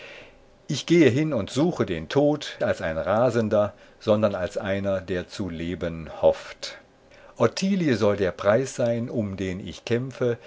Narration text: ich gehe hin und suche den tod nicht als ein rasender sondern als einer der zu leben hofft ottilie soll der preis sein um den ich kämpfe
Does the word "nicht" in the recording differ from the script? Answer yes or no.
yes